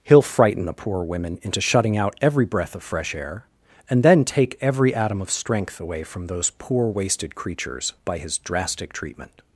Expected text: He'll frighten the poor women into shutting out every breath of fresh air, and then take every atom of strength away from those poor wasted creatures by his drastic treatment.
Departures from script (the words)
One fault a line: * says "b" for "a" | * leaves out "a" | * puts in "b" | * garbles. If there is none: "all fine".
all fine